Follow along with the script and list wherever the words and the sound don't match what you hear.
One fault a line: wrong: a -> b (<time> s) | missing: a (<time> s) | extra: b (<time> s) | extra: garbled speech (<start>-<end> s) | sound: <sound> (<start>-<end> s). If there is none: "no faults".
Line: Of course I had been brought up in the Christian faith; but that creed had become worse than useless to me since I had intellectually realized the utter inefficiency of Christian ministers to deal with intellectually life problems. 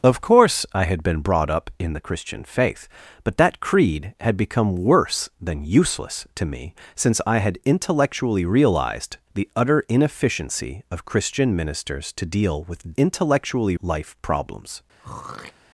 sound: throat clearing (15.0-15.5 s)